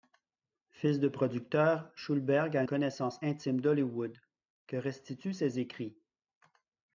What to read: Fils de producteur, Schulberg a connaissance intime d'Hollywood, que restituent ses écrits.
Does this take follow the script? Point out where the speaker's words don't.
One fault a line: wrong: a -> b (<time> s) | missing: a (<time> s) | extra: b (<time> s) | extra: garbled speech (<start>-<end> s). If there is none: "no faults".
no faults